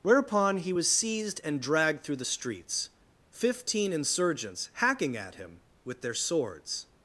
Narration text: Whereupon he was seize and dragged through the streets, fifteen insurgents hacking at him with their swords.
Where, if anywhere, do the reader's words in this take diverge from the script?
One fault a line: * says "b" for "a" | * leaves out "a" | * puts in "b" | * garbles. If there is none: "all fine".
* says "seized" for "seize"